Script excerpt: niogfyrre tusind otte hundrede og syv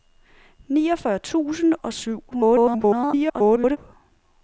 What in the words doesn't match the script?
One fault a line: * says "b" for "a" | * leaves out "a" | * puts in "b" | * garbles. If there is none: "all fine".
* leaves out "otte hundrede"
* garbles